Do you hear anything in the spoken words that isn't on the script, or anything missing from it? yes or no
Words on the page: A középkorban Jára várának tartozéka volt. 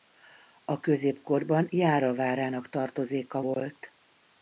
no